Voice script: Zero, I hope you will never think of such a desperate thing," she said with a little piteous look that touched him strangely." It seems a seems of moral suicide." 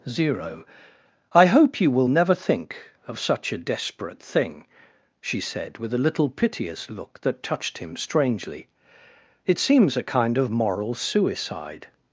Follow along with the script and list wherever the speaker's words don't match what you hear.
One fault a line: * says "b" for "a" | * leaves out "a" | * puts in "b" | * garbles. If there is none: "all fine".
* says "kind" for "seems"